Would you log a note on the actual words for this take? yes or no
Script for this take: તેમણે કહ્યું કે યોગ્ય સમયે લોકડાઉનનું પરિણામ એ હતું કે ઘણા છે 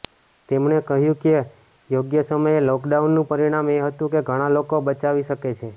yes